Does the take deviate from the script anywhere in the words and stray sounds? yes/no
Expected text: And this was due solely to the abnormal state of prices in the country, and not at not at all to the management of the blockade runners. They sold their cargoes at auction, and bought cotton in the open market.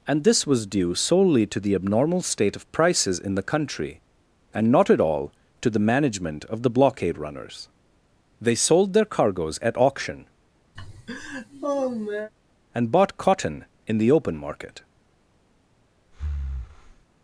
yes